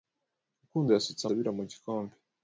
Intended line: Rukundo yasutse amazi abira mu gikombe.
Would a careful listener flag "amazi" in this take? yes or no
yes